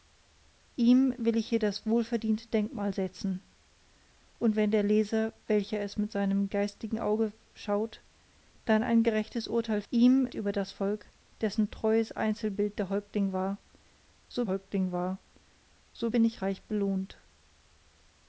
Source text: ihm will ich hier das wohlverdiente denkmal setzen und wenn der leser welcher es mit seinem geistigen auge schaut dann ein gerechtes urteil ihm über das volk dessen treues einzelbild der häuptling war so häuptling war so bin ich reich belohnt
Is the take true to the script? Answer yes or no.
yes